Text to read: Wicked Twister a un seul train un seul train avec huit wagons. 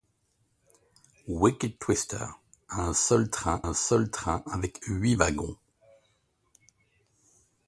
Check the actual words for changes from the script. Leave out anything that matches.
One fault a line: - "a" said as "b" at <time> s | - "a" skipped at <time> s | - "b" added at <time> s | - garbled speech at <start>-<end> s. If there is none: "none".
none